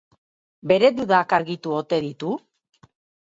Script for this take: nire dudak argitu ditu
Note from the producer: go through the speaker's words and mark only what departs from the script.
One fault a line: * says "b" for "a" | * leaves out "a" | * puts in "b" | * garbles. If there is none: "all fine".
* says "bere" for "nire"
* puts in "ote"